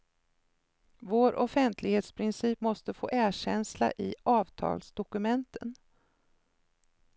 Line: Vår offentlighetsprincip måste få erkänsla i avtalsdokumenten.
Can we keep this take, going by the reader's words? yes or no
yes